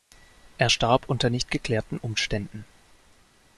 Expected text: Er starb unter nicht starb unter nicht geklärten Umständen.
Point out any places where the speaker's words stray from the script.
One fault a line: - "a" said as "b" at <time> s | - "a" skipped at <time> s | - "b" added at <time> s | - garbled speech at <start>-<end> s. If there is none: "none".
- "starb unter nicht" skipped at 1.5 s